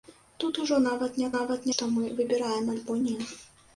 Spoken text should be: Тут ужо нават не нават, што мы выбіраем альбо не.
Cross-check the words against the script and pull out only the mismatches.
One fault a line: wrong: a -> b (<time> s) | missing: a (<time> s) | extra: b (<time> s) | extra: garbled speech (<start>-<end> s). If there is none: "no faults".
no faults